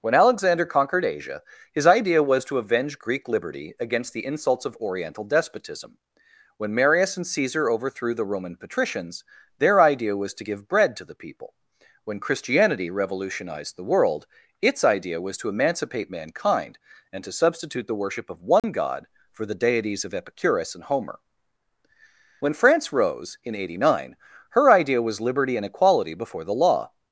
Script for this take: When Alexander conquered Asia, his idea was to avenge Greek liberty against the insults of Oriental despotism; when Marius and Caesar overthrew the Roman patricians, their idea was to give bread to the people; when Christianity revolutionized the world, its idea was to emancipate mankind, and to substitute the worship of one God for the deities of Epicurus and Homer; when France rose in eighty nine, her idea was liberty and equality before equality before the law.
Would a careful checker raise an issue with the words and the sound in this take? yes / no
yes